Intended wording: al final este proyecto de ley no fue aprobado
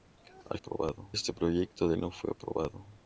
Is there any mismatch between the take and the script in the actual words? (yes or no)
yes